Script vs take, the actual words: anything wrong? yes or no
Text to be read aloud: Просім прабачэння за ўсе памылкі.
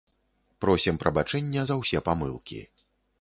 no